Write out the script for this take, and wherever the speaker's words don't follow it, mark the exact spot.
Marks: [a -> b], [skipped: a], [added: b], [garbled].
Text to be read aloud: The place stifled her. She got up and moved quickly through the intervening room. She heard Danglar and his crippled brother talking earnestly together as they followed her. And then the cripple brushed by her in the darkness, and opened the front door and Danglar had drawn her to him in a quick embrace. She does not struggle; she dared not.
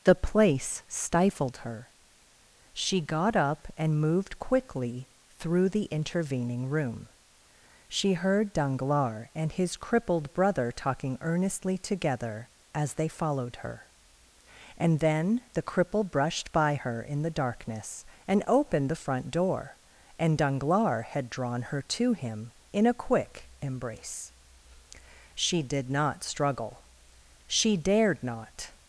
The place stifled her. She got up and moved quickly through the intervening room. She heard Danglar and his crippled brother talking earnestly together as they followed her. And then the cripple brushed by her in the darkness, and opened the front door and Danglar had drawn her to him in a quick embrace. She [does -> did] not struggle; she dared not.